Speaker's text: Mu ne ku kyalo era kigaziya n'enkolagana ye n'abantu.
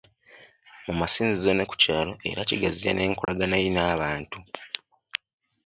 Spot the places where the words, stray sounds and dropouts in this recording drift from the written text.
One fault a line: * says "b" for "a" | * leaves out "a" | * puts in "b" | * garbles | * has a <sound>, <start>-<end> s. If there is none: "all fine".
* puts in "masinzizo"
* has a dropout, 3.2-3.3 s